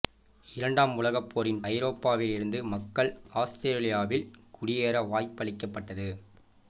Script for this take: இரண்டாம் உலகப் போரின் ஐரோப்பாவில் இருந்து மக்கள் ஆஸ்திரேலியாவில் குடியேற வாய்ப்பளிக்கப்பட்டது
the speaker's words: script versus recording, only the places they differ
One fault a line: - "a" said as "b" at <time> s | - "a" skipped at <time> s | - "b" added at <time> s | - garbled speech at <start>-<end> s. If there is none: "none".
none